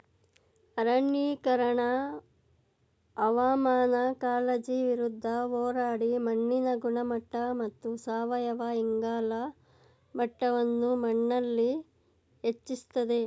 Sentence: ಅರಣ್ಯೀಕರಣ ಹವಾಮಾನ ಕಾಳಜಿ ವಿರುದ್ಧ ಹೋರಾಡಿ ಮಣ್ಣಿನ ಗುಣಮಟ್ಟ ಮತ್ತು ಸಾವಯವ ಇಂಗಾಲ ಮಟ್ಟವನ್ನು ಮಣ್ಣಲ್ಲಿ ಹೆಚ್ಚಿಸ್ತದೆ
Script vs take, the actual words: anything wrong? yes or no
no